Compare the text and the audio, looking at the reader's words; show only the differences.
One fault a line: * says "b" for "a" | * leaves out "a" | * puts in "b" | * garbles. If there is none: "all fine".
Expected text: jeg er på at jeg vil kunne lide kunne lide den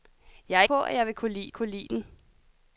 all fine